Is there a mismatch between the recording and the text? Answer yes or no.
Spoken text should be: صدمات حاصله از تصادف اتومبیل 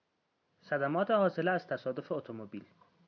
no